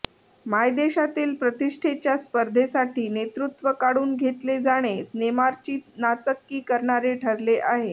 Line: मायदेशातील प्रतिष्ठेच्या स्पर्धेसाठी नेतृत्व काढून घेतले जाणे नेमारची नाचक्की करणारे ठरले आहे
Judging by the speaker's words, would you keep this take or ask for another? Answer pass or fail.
pass